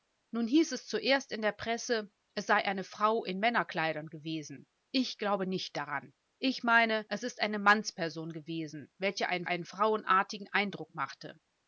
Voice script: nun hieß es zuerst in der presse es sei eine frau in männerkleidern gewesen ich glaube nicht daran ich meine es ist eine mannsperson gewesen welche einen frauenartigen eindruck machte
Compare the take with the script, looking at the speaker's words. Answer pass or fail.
fail